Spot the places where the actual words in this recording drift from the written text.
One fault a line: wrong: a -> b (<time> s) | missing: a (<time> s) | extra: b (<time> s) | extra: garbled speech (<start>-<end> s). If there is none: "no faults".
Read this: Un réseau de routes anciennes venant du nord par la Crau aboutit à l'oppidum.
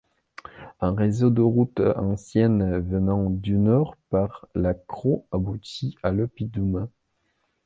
no faults